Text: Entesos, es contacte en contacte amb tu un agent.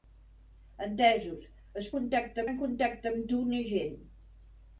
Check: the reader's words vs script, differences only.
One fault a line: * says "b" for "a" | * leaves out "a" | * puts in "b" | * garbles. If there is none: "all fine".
all fine